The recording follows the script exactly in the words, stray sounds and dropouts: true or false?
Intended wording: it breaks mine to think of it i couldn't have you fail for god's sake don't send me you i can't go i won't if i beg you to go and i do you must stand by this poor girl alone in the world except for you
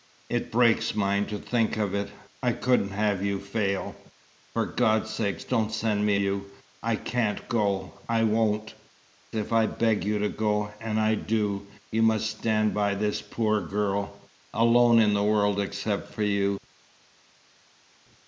true